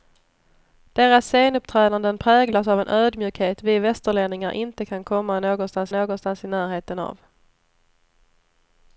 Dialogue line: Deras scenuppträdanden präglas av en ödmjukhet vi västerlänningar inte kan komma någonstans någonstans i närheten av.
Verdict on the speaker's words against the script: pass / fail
pass